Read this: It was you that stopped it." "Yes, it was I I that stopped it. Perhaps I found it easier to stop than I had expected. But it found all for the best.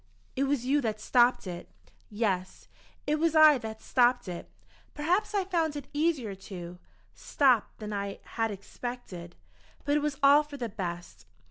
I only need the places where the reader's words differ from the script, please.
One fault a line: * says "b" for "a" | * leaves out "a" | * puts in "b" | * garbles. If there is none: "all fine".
* leaves out "I"
* says "was" for "found"